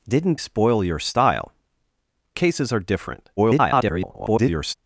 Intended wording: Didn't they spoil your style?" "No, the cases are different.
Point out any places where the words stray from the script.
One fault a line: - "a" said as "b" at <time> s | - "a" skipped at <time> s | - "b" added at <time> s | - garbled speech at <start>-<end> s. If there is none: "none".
- "they" skipped at 0.4 s
- "No the" skipped at 1.5 s
- garbled speech at 3.4-4.7 s